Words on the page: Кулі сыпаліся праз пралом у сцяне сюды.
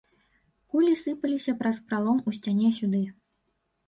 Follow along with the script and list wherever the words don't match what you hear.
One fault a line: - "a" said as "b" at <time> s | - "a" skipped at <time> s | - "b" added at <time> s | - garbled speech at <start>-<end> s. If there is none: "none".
none